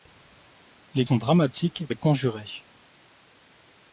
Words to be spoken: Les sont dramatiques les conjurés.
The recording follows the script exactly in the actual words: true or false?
true